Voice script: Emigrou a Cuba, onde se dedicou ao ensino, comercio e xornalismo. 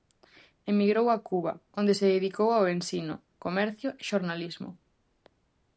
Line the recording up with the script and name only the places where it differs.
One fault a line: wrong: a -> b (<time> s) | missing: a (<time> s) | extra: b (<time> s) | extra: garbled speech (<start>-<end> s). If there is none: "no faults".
no faults